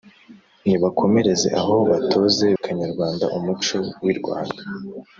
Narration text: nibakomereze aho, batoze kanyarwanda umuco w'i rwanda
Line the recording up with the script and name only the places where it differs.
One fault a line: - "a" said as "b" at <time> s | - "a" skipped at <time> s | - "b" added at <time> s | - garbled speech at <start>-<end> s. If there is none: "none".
none